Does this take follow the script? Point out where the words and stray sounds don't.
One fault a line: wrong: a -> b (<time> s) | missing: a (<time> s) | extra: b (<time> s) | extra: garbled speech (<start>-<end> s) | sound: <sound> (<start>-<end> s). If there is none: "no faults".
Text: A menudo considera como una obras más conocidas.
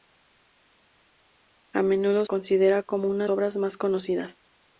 no faults